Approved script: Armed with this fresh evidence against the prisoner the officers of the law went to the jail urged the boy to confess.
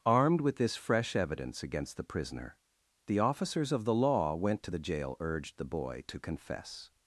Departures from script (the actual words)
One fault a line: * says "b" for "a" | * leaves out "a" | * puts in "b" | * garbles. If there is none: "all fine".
all fine